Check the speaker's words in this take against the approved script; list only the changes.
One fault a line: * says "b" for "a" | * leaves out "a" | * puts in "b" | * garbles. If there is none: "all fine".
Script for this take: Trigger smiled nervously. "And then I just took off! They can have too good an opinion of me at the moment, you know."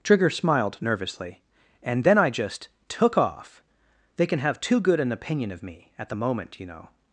all fine